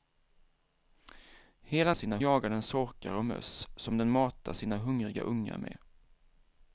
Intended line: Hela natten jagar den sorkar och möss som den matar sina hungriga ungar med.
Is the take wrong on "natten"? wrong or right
wrong